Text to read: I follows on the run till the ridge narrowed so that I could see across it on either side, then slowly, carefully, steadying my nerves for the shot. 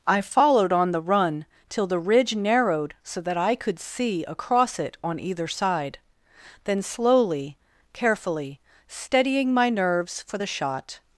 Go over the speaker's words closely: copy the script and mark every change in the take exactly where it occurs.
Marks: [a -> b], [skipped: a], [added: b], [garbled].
I [follows -> followed] on the run till the ridge narrowed so that I could see across it on either side, then slowly, carefully, steadying my nerves for the shot.